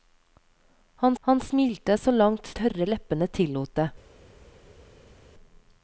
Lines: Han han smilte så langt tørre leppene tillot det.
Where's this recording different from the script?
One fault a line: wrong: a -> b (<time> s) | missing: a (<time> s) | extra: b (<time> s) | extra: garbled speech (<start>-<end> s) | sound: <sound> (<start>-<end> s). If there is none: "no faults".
no faults